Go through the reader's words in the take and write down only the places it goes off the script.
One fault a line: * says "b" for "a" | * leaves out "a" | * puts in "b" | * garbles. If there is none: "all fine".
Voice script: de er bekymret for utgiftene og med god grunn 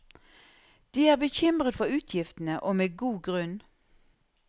all fine